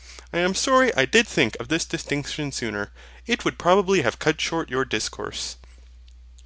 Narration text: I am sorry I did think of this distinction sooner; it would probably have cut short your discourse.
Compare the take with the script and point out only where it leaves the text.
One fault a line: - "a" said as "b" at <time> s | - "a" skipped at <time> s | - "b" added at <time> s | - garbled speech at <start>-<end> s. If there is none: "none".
none